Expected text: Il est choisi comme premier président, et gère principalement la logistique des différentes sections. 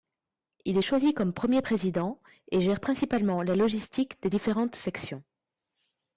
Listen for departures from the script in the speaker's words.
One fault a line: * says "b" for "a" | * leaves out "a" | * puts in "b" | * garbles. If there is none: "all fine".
all fine